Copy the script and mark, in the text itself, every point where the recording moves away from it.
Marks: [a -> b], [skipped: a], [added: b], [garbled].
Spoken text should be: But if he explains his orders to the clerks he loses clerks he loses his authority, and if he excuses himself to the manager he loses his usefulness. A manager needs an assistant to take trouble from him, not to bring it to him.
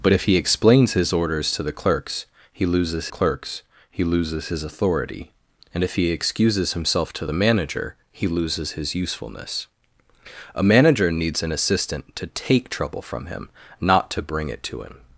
But if he explains his orders to the clerks he loses clerks he loses his authority, and if he excuses himself to the manager he loses his usefulness. A manager needs an assistant to take trouble from him, not to bring it to him.